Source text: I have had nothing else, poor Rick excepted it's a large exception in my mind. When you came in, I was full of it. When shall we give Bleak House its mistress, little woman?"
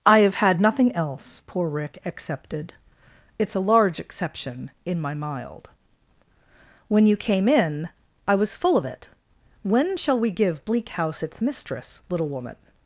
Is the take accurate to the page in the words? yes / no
no